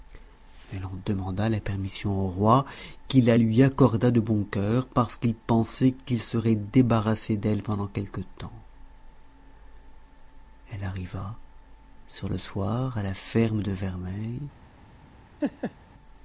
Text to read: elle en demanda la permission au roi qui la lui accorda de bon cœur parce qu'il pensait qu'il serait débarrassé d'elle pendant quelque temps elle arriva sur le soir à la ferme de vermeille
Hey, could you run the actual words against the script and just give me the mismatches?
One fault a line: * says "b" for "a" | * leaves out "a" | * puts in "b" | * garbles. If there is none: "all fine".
all fine